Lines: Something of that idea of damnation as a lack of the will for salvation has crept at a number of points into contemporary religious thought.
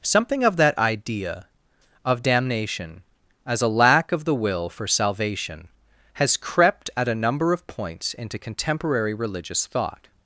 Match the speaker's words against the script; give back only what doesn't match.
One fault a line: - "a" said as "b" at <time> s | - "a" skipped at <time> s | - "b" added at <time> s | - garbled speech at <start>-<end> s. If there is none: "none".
none